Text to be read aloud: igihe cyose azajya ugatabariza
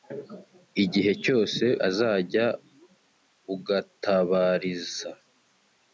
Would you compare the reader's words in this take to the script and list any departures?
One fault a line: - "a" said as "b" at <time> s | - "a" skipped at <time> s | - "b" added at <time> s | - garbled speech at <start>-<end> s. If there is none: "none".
none